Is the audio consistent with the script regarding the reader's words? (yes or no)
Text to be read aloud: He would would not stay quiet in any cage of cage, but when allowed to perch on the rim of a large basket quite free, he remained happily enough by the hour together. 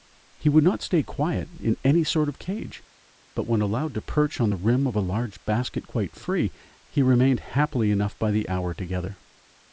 no